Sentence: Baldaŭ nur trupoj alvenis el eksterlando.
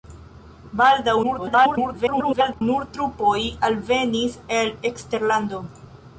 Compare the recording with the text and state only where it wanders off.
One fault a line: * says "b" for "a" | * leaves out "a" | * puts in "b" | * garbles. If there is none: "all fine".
* garbles